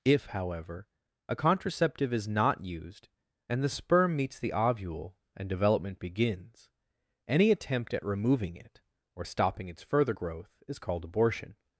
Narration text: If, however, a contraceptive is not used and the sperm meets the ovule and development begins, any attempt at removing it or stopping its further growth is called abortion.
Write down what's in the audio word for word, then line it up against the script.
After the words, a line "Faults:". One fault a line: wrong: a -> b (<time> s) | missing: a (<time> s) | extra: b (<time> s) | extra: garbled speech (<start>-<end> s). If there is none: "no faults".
If, however, a contraceptive is not used and the sperm meets the ovule and development begins, any attempt at removing it or stopping its further growth is called abortion.
Faults:
no faults